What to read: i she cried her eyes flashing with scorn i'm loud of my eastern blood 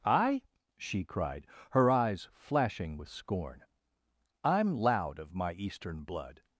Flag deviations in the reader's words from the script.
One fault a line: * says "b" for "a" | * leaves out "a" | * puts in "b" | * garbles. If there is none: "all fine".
all fine